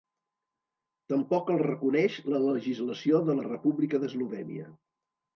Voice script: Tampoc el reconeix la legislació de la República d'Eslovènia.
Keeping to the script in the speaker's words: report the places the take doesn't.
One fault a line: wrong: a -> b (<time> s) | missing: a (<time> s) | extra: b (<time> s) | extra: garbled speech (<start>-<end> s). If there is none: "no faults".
no faults